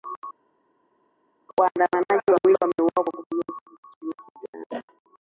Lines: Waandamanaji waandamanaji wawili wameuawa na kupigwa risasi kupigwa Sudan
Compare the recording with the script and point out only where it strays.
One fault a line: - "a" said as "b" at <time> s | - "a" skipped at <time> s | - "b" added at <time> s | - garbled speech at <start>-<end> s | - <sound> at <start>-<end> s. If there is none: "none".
- "waandamanaji" skipped at 2.3 s
- "na" said as "kwa" at 2.9 s
- "kupigwa" said as "nchini" at 4.2 s